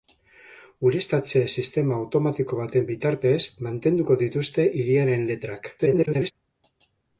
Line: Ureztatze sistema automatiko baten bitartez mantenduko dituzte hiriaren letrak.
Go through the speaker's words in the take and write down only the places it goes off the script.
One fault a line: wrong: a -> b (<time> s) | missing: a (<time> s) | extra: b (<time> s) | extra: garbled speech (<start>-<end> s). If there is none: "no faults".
extra: garbled speech (5.8-6.3 s)